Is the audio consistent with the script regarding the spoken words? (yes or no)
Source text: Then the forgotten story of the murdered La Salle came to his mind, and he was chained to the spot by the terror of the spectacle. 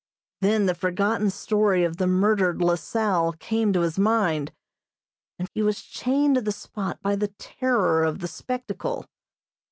yes